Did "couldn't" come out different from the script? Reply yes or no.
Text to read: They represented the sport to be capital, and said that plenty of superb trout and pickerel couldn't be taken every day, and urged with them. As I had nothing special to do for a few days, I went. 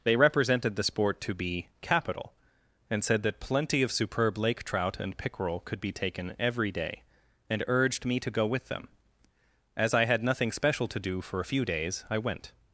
yes